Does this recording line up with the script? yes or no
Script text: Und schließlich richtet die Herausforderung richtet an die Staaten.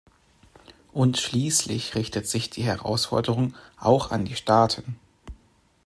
no